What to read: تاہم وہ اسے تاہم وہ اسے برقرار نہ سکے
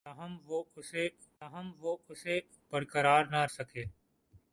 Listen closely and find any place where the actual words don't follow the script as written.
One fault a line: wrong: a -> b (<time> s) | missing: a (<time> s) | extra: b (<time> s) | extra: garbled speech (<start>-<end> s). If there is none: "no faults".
no faults